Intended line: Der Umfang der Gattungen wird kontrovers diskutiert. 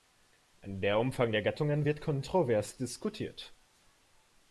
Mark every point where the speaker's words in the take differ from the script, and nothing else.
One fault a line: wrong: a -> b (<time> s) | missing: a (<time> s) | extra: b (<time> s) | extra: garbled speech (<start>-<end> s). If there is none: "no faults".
no faults